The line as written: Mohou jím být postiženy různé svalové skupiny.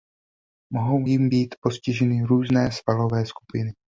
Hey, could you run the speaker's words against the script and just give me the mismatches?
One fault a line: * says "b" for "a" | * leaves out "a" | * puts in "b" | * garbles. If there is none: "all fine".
all fine